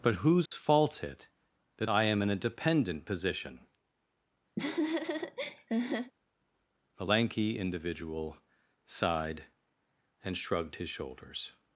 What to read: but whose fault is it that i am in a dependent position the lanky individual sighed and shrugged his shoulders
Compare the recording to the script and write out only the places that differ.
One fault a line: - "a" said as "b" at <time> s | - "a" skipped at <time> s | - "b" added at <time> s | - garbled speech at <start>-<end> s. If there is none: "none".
- "is" skipped at 1.0 s